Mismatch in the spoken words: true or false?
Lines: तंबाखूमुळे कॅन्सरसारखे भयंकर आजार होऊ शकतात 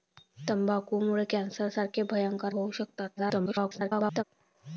true